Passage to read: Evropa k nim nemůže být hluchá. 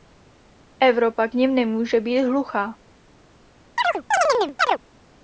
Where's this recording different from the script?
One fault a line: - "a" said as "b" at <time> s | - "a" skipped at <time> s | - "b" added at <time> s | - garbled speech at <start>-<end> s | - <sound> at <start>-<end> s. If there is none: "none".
- chirp at 3.8-4.8 s